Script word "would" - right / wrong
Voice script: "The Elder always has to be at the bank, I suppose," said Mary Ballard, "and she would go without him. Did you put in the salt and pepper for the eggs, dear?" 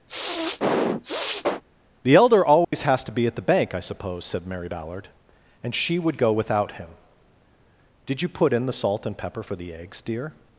right